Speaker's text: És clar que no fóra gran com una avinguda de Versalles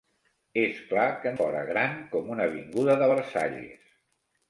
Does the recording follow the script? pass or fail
fail